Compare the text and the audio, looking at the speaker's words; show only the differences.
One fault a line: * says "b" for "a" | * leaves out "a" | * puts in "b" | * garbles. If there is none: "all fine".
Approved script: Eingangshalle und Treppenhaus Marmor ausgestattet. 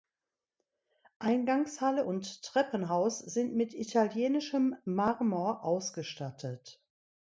* puts in "sind mit italienischem"